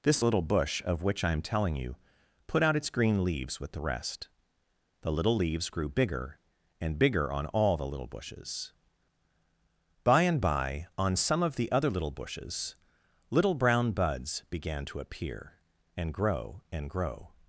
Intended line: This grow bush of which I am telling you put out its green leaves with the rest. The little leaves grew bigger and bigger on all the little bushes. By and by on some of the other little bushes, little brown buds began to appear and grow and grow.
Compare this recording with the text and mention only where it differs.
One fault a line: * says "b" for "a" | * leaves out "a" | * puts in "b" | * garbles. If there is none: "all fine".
* says "little" for "grow"